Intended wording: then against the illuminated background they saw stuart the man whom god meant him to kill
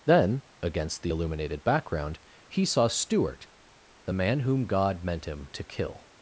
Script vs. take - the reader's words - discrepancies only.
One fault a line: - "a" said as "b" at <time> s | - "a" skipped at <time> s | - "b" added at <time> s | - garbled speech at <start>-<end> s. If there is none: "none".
- "they" said as "he" at 2.5 s